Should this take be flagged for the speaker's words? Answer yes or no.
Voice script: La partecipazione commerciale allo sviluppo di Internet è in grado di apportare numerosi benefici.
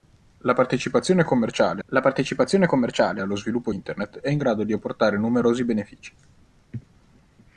yes